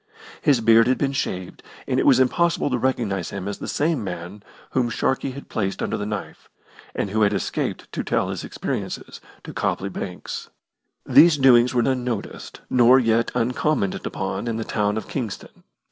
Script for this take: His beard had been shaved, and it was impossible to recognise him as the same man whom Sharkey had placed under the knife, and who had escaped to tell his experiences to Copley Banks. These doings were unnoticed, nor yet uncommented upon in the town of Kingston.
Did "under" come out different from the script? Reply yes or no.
no